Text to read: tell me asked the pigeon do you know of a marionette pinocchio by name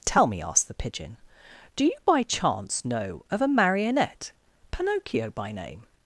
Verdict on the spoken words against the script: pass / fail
fail